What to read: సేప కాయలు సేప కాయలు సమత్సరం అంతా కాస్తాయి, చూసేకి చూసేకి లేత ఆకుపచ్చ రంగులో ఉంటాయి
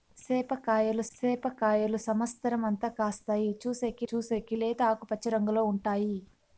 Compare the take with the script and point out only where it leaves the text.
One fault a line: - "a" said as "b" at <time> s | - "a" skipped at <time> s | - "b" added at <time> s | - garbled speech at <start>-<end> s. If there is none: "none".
none